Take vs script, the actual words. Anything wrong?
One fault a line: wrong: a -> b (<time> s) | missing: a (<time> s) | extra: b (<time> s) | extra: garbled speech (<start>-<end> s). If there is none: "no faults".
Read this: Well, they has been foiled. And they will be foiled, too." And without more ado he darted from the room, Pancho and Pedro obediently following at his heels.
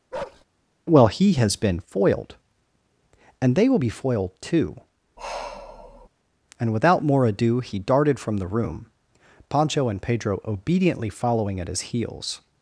wrong: they -> he (1.1 s)